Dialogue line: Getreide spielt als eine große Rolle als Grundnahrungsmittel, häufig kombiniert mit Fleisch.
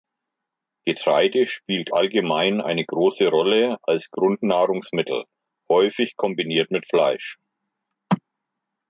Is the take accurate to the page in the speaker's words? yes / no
no